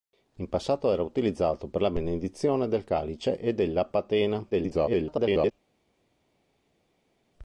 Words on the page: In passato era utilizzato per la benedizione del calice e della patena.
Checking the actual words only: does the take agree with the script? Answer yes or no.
no